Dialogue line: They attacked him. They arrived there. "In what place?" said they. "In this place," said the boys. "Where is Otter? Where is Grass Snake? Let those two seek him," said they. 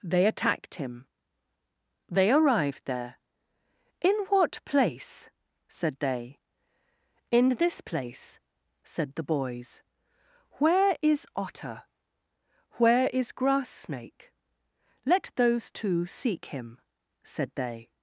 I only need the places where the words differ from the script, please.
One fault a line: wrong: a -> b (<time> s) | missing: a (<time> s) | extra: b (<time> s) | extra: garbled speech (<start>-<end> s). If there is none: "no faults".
no faults